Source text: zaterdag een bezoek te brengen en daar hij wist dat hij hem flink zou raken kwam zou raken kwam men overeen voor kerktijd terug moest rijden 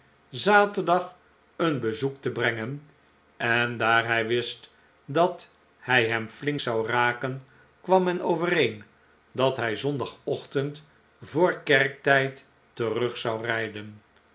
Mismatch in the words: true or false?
true